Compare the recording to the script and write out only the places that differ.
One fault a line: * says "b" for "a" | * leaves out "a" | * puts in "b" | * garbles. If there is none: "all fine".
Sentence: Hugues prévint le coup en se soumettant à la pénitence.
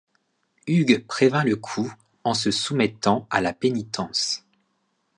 all fine